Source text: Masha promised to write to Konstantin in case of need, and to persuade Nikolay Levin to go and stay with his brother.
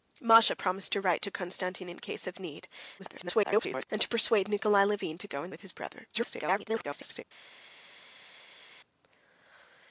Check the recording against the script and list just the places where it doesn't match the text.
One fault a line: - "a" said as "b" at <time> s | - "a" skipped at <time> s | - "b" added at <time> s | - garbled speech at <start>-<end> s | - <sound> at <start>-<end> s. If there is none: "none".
- garbled speech at 3.0-3.9 s
- "stay" skipped at 5.5 s
- garbled speech at 6.1-7.2 s